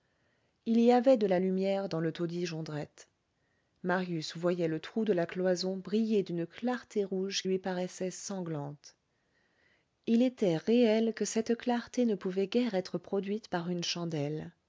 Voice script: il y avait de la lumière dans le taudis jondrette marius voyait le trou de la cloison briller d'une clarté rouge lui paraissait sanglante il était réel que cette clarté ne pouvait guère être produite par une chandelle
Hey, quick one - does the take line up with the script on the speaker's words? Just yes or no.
yes